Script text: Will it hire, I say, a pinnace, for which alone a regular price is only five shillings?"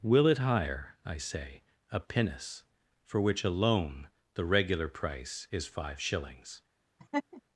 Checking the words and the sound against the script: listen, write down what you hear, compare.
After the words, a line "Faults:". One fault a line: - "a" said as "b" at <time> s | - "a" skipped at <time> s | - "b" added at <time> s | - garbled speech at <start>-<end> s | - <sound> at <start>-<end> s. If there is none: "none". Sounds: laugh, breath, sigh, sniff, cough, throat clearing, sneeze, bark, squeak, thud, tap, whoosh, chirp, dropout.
Will it hire, I say, a pinnace, for which alone the regular price is five shillings?"
Faults:
- "a" said as "the" at 4.3 s
- "only" skipped at 5.7 s
- laugh at 7.0-7.4 s